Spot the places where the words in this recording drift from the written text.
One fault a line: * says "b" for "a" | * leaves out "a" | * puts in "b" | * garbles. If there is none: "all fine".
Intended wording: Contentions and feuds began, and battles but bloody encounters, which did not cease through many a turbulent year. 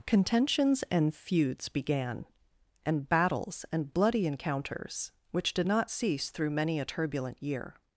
* says "and" for "but"